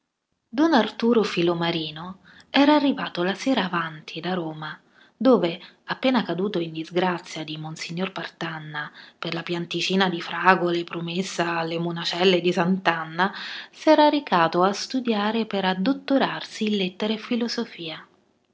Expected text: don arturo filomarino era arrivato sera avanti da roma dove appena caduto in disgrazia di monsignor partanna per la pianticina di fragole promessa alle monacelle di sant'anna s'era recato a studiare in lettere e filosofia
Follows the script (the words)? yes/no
no